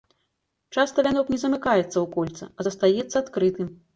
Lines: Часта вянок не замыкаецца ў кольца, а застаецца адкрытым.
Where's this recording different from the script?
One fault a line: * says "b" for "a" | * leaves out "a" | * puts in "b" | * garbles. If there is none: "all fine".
all fine